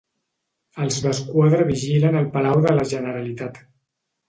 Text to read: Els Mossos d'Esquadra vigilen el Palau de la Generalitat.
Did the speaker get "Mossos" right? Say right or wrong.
wrong